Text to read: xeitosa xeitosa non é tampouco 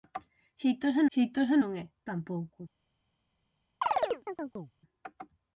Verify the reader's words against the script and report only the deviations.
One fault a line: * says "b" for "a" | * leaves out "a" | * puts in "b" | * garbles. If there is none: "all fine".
all fine